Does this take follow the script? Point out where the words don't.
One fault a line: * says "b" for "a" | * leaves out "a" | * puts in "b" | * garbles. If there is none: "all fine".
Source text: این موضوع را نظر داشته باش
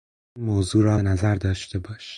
all fine